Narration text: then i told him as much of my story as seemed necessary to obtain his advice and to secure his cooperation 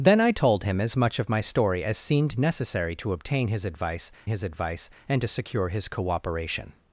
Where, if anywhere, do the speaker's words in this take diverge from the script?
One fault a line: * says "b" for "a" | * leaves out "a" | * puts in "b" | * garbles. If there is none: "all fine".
* puts in "his advice"